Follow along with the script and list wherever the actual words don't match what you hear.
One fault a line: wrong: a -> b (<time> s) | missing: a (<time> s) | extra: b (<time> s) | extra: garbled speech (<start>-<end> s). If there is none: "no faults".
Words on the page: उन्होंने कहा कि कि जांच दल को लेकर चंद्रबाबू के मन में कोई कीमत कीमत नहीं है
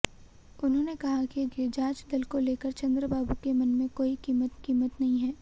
no faults